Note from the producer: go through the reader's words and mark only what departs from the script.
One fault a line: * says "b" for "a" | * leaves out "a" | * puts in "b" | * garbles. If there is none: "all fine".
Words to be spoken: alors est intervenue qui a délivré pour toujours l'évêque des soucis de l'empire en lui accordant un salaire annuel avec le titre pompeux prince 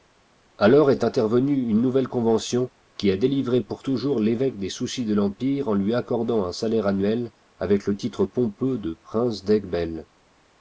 * puts in "une nouvelle convention"
* puts in "de"